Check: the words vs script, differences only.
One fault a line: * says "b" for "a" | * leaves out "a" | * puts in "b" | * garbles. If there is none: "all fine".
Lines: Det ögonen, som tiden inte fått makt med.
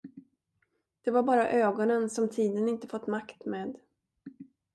* puts in "var bara"